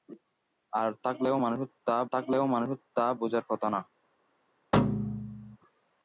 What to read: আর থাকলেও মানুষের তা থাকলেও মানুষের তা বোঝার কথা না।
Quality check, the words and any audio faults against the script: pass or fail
fail